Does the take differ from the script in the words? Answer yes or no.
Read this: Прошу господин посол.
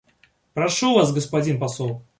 yes